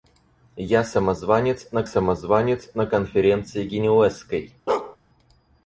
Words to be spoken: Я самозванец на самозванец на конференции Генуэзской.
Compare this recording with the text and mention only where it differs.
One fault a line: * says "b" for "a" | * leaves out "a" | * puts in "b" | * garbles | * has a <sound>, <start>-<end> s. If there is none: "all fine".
* has a bark, 4.7-5.0 s